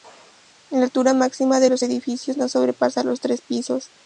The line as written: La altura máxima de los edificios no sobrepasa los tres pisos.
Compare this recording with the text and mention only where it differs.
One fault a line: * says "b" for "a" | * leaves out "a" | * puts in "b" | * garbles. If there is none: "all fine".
all fine